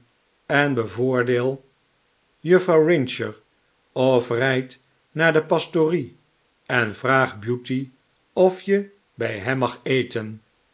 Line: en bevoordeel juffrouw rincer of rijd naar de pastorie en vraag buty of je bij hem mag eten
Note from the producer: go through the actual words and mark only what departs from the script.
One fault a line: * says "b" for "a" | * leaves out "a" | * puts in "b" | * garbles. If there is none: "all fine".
all fine